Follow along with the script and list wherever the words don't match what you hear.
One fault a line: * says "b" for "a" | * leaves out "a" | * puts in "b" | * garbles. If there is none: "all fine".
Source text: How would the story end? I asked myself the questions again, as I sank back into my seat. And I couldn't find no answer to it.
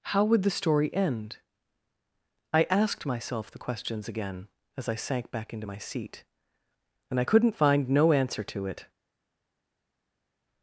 all fine